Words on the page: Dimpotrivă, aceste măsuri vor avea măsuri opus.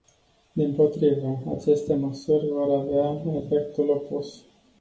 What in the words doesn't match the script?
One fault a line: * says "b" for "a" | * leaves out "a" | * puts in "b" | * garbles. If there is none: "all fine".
* says "efectul" for "măsuri"